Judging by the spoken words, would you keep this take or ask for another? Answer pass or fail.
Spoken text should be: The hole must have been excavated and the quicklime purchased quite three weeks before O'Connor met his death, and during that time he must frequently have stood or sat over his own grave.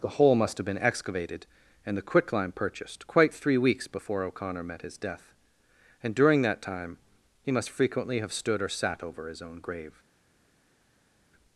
pass